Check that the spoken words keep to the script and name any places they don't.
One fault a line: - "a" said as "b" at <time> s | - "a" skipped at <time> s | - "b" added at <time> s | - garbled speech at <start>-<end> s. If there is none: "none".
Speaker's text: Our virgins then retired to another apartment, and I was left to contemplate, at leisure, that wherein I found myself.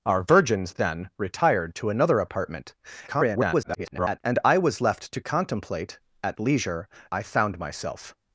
- garbled speech at 3.1-4.2 s
- "that wherein" skipped at 6.9 s